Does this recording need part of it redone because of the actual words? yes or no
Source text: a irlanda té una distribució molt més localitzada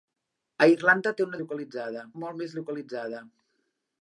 yes